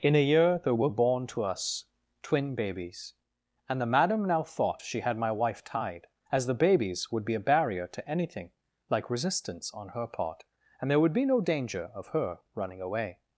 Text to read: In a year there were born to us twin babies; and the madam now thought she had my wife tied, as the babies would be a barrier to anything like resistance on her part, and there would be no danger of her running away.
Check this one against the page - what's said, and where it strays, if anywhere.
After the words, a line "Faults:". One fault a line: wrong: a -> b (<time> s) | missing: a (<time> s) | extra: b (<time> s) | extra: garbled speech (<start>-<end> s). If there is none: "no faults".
In a year there were born to us twin babies; and the madam now thought she had my wife tied, as the babies would be a barrier to anything like resistance on her part, and there would be no danger of her running away.
Faults:
no faults